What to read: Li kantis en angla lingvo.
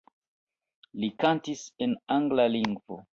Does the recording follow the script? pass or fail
pass